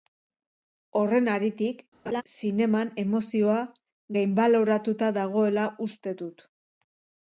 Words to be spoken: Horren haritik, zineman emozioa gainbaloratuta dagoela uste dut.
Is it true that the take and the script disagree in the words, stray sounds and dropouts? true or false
true